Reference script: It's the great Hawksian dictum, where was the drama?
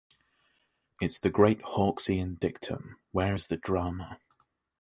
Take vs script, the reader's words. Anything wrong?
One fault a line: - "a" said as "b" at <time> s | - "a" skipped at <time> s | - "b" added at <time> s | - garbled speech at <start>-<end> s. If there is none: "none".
- "was" said as "is" at 3.3 s